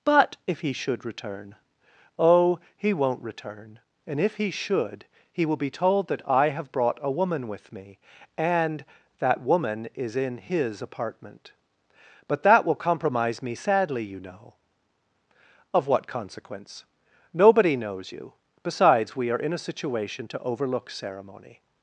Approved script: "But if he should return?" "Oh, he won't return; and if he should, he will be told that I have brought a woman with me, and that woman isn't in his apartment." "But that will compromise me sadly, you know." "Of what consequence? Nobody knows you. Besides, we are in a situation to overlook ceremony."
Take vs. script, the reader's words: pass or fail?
fail